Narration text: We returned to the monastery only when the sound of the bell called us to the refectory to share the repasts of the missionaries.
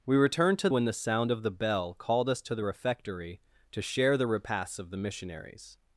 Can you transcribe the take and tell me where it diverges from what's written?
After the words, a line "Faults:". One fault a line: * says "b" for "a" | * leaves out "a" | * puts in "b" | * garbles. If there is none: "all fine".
We returned to when the sound of the bell called us to the refectory to share the repasts of the missionaries.
Faults:
* leaves out "the monastery only"